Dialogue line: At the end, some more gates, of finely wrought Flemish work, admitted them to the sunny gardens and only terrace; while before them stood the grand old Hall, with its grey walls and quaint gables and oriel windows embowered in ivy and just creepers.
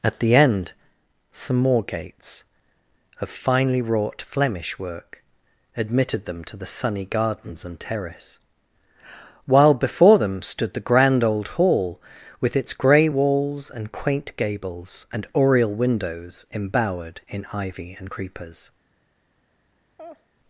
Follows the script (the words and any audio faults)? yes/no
no